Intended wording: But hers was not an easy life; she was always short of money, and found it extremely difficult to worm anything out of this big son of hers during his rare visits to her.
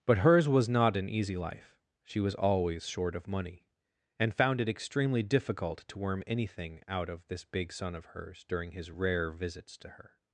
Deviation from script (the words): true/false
false